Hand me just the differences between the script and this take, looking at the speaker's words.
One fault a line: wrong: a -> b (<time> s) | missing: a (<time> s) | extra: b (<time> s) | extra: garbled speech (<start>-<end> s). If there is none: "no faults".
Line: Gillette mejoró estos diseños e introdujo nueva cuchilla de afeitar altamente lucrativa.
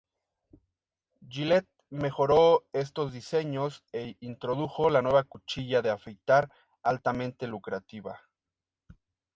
extra: la (4.9 s)